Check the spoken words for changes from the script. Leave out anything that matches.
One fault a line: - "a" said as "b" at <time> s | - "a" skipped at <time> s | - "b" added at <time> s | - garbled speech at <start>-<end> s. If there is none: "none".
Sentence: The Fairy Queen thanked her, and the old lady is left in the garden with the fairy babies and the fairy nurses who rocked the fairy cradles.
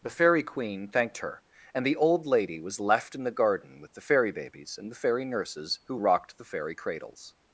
- "is" said as "was" at 2.6 s